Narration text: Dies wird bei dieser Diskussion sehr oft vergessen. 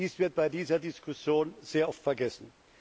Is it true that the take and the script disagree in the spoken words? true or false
false